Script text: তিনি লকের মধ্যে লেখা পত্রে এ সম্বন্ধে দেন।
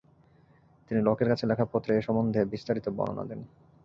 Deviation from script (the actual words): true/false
true